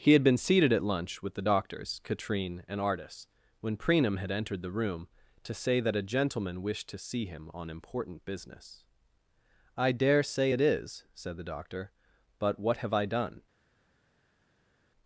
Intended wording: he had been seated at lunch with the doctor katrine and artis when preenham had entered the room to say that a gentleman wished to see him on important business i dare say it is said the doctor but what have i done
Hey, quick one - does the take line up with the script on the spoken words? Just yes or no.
no